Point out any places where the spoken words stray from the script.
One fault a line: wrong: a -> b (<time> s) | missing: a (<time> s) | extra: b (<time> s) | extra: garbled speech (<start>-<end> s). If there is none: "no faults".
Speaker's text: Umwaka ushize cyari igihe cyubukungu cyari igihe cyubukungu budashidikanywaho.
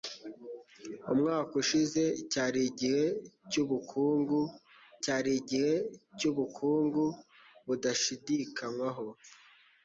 no faults